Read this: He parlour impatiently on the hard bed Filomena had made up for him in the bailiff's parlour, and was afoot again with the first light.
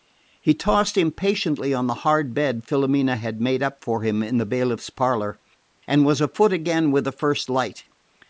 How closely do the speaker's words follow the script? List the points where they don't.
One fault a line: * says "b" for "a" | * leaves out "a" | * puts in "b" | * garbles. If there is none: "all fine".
* says "tossed" for "parlour"